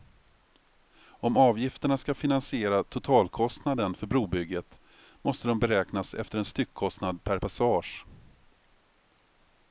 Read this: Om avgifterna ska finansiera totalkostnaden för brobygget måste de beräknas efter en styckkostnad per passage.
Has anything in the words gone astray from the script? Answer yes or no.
no